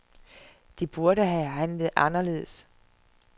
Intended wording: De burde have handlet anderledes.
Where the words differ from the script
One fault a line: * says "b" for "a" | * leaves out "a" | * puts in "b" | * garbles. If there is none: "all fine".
all fine